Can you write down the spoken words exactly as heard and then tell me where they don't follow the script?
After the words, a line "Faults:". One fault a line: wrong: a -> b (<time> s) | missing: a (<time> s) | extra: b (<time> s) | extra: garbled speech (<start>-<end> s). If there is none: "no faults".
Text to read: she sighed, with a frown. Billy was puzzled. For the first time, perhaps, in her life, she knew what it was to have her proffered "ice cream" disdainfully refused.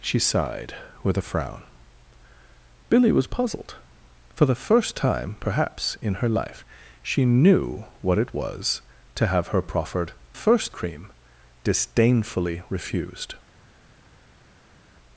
she sighed, with a frown. Billy was puzzled. For the first time, perhaps, in her life, she knew what it was to have her proffered "first cream" disdainfully refused.
Faults:
wrong: ice -> first (10.3 s)